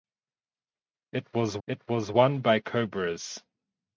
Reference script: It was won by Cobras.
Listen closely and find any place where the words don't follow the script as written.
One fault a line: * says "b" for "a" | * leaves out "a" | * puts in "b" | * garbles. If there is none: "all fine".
* puts in "it was"